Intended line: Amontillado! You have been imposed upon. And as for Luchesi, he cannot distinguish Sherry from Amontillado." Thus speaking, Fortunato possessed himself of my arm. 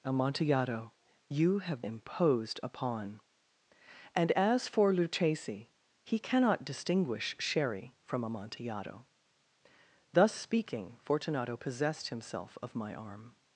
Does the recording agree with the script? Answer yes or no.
no